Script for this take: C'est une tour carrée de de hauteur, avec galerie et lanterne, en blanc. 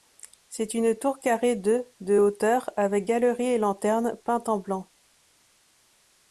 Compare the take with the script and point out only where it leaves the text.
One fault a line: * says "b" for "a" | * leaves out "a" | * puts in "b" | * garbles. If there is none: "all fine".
* puts in "peinte"